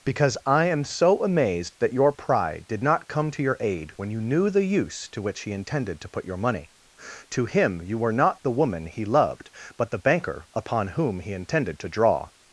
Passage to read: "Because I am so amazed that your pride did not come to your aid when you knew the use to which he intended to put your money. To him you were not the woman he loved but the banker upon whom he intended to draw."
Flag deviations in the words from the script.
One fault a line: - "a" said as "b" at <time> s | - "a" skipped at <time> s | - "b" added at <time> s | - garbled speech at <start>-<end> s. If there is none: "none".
none